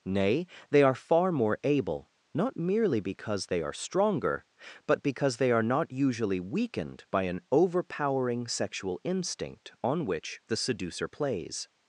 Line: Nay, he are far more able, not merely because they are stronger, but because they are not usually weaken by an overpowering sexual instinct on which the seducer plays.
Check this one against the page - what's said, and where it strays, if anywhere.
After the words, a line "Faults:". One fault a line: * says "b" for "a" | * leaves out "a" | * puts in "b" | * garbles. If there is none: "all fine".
Nay, they are far more able, not merely because they are stronger, but because they are not usually weakened by an overpowering sexual instinct on which the seducer plays.
Faults:
* says "they" for "he"
* says "weakened" for "weaken"